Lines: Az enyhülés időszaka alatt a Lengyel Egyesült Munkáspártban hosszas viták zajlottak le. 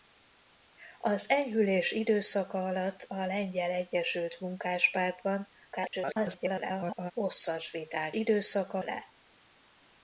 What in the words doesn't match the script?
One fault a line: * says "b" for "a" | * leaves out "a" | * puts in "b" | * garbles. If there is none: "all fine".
* garbles
* says "időszaka" for "zajlottak"